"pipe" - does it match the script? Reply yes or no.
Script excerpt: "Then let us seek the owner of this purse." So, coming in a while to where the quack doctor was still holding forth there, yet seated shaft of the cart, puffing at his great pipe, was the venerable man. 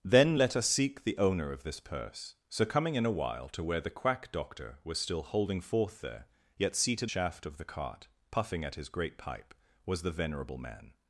yes